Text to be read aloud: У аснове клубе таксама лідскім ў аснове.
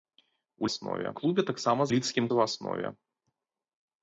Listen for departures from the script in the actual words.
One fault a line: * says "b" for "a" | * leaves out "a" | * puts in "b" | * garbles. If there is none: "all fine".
all fine